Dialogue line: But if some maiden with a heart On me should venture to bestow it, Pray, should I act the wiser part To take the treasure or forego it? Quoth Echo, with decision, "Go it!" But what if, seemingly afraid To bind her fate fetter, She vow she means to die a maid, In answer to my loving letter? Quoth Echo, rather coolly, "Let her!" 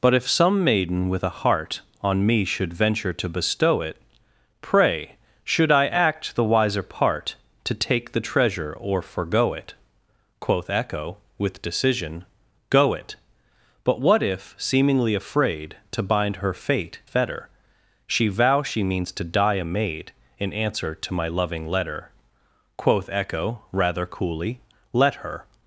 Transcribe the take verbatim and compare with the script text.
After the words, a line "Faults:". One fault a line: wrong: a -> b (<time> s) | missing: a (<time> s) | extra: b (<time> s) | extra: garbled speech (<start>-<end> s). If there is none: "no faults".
But if some maiden with a heart On me should venture to bestow it, Pray, should I act the wiser part To take the treasure or forego it? Quoth Echo, with decision, "Go it!" But what if, seemingly afraid To bind her fate fetter, She vow she means to die a maid, In answer to my loving letter? Quoth Echo, rather coolly, "Let her!"
Faults:
no faults